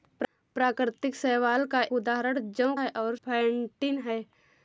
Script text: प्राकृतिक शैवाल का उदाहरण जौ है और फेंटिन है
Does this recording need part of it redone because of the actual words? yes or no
no